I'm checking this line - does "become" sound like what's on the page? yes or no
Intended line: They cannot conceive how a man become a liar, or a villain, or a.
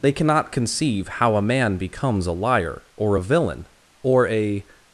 no